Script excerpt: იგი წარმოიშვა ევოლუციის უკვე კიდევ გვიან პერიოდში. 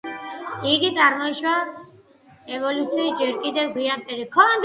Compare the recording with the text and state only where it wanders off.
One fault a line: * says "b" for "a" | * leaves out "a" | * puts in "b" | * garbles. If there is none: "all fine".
* says "ჯერ" for "უკვე"